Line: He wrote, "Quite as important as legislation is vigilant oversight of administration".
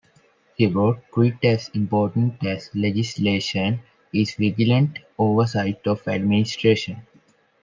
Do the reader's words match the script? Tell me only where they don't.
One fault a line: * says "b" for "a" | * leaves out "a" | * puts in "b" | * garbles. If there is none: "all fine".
all fine